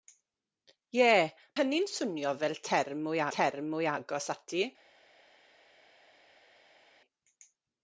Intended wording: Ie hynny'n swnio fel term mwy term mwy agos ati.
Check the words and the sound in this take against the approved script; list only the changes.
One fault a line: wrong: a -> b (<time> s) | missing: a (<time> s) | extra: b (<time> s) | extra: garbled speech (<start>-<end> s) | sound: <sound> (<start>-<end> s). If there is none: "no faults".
no faults